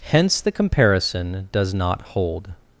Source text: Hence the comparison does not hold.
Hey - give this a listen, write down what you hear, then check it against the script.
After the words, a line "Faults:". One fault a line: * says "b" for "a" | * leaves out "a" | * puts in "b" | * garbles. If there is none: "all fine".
Hence the comparison does not hold.
Faults:
all fine